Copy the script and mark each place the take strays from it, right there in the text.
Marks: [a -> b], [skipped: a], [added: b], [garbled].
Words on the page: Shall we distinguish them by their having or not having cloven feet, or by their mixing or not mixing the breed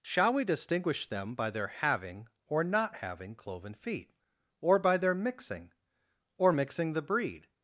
Shall we distinguish them by their having or not having cloven feet, or by their mixing or [skipped: not] mixing the breed